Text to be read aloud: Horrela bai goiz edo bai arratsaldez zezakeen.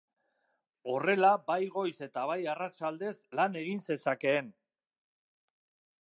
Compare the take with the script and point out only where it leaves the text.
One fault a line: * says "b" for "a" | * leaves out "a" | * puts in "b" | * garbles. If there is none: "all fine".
* says "eta" for "edo"
* puts in "lan egin"